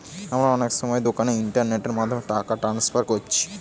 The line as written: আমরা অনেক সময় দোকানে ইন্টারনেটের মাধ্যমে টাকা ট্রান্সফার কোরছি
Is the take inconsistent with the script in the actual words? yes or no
no